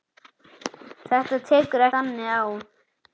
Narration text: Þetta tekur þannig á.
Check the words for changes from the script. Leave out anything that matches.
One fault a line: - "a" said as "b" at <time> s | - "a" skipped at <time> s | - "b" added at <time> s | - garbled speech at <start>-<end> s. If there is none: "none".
none